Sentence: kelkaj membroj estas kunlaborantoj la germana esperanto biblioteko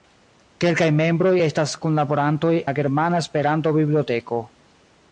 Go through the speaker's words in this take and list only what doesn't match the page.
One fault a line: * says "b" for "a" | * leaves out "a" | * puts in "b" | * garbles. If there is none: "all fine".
all fine